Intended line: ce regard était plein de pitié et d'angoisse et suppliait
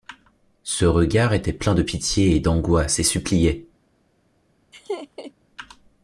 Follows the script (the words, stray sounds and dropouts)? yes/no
no